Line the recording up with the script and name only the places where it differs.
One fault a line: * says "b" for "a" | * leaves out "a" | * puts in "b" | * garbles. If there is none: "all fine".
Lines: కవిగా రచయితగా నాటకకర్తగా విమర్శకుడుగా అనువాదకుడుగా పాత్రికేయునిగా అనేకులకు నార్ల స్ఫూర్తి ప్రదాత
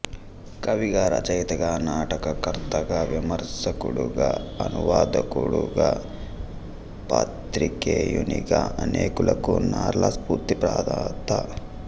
all fine